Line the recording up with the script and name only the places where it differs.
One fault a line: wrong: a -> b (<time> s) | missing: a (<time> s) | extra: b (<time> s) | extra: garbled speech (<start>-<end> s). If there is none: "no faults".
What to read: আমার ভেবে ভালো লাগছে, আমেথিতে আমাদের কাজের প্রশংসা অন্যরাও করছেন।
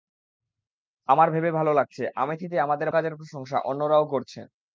no faults